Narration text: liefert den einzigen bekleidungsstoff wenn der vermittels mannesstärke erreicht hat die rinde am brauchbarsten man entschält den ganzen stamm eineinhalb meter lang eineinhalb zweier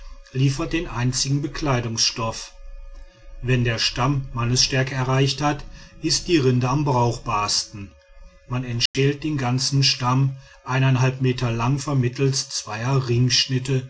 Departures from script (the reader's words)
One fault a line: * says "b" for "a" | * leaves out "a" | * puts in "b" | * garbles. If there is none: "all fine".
* says "stamm" for "vermittels"
* puts in "ist"
* says "vermittels" for "eineinhalb"